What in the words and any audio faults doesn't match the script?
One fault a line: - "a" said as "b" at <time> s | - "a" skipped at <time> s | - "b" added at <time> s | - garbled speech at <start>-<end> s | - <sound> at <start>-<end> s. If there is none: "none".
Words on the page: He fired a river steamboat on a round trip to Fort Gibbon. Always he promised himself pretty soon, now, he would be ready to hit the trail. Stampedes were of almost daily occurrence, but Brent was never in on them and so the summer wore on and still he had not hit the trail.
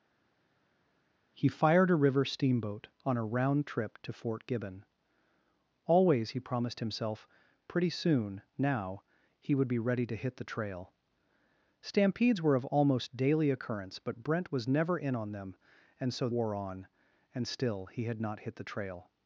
- "the summer" skipped at 16.3 s